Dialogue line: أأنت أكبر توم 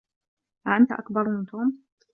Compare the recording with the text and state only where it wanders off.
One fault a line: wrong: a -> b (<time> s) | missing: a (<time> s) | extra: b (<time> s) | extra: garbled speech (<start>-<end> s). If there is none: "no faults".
extra: من (1.3 s)